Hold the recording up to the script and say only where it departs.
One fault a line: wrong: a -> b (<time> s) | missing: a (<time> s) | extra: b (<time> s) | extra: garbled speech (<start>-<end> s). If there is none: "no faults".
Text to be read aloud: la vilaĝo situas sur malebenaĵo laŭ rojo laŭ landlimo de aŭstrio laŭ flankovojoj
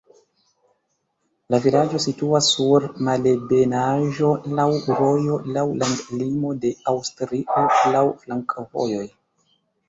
no faults